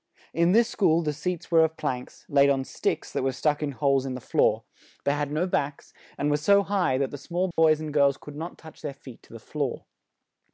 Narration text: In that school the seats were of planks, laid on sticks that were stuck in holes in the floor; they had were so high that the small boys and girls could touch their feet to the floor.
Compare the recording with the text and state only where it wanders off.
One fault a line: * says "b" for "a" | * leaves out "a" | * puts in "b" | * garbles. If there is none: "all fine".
* says "this" for "that"
* puts in "no backs and"
* puts in "not"